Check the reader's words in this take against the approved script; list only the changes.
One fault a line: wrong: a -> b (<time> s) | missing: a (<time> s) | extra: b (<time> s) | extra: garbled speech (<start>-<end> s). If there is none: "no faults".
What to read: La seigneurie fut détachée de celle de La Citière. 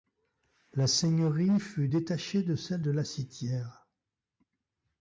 no faults